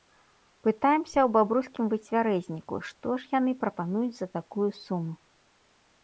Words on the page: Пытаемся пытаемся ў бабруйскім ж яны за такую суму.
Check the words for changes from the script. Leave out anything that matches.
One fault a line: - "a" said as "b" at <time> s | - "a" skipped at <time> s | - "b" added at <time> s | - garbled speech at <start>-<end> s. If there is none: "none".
- "пытаемся" skipped at 1.2 s
- "выцвярэзніку што" added at 1.9 s
- "прапануюць" added at 3.6 s